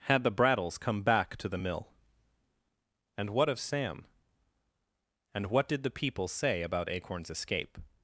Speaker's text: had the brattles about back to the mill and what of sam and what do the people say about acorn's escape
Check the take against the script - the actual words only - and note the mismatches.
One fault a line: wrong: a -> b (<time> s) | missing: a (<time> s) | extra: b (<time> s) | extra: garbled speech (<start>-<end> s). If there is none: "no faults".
wrong: about -> come (0.8 s)
wrong: do -> did (5.7 s)